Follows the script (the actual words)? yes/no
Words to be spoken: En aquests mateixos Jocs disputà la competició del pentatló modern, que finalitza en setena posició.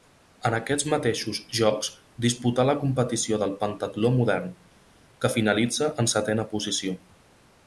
yes